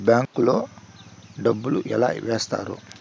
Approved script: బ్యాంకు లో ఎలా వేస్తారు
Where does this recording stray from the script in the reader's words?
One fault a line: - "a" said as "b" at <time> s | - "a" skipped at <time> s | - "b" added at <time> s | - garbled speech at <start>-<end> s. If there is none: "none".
- "డబ్బులు" added at 1.4 s